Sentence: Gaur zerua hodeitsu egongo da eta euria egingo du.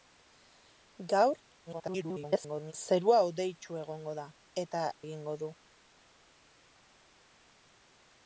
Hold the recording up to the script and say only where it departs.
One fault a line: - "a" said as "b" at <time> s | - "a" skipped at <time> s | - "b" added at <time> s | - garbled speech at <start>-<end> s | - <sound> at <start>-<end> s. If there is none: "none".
- garbled speech at 1.7-2.7 s
- "euria" skipped at 4.8 s